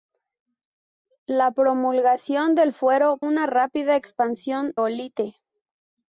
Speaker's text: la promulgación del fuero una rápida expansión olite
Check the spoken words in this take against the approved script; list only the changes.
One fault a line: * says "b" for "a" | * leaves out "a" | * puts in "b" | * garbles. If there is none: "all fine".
all fine